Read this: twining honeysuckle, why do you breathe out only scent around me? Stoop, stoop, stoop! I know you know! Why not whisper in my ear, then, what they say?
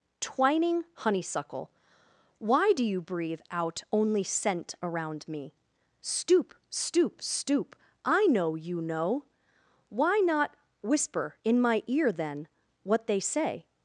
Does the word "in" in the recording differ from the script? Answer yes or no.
no